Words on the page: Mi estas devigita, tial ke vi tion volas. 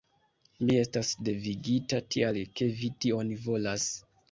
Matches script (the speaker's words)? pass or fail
pass